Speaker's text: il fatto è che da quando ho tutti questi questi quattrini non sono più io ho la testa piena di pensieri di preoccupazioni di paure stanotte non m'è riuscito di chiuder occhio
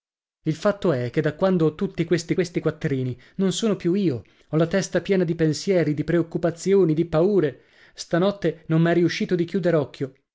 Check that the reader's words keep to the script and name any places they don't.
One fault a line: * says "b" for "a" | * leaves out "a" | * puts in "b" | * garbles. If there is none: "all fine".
all fine